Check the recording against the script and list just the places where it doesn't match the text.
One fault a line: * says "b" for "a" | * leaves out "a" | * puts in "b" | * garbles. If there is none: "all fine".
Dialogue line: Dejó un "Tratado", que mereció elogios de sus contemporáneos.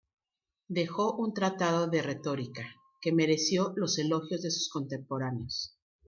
* puts in "de retórica"
* puts in "los"